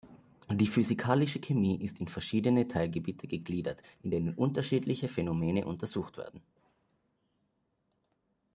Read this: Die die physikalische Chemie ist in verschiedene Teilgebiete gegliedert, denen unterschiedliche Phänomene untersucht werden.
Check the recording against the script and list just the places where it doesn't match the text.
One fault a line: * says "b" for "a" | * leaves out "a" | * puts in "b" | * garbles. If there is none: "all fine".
* leaves out "die"
* puts in "in"